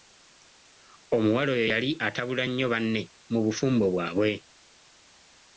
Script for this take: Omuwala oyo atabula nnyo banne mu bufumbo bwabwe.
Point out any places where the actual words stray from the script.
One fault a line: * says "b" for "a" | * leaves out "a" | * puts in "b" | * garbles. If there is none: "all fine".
* puts in "yali"